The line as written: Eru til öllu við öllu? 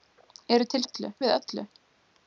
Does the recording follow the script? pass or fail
pass